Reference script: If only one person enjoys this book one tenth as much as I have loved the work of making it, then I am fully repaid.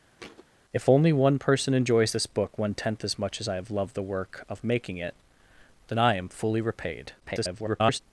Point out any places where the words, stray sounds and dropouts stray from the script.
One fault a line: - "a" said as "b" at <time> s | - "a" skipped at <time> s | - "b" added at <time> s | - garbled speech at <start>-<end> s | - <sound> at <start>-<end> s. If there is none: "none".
- thud at 0.2-0.5 s
- garbled speech at 7.2-8.0 s